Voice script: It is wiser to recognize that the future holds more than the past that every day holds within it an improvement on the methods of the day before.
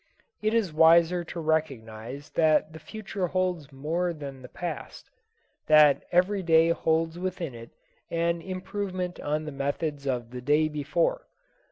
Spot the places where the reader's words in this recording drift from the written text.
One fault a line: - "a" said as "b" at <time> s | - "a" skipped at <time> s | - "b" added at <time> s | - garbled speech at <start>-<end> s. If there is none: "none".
none